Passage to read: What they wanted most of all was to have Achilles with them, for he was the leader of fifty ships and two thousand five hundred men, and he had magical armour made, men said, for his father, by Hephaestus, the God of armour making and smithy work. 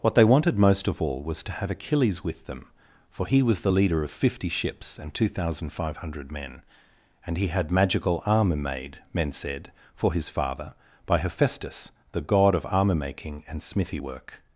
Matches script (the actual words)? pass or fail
pass